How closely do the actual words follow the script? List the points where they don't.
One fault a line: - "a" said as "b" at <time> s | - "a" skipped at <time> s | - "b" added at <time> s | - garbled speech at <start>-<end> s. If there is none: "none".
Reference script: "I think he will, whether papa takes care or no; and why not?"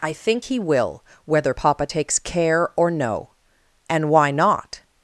none